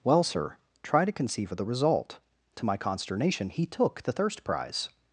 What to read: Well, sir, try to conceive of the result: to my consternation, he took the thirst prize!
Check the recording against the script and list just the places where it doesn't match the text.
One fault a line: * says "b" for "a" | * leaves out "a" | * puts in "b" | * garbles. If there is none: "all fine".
all fine